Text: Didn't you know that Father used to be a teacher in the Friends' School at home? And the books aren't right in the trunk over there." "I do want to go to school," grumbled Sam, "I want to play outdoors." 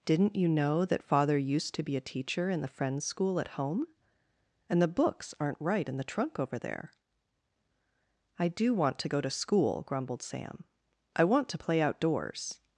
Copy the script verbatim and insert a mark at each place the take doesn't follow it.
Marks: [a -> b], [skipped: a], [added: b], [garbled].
Didn't you know that Father used to be a teacher in the Friends' School at home? And the books aren't right in the trunk over there." "I do want to go to school," grumbled Sam, "I want to play outdoors."